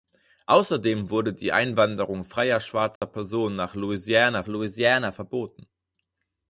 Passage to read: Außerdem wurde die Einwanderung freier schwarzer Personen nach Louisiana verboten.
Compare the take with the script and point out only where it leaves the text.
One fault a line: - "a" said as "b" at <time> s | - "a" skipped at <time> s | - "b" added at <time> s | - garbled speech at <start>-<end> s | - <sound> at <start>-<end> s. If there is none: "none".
- dropout at 3.0-3.0 s
- "Louisiana" added at 4.5 s